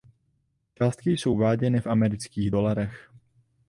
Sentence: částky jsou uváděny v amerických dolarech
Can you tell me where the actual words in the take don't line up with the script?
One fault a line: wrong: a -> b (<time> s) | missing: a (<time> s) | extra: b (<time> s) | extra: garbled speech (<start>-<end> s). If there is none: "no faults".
no faults